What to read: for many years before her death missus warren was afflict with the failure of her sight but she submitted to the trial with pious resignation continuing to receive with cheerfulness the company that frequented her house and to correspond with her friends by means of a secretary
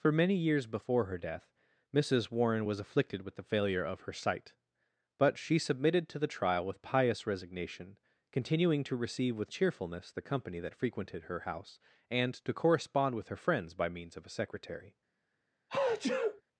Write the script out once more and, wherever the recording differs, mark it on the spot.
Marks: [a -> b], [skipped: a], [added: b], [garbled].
for many years before her death missus warren was [afflict -> afflicted] with the failure of her sight but she submitted to the trial with pious resignation continuing to receive with cheerfulness the company that frequented her house and to correspond with her friends by means of a secretary